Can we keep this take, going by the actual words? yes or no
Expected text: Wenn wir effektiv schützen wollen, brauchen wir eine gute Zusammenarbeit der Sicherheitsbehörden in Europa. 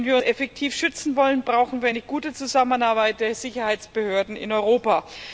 yes